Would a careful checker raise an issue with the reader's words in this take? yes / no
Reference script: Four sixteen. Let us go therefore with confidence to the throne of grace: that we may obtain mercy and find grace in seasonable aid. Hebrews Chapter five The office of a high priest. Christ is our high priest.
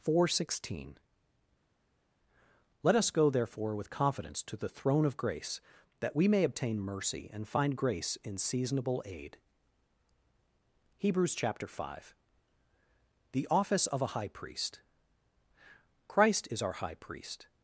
no